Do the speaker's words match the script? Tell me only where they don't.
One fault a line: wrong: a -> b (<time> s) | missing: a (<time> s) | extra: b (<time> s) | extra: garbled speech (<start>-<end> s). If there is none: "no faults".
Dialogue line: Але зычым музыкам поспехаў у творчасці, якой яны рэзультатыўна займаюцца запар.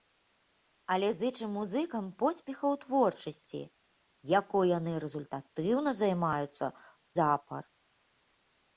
no faults